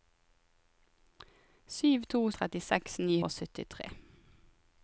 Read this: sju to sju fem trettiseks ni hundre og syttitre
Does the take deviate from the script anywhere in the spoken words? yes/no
yes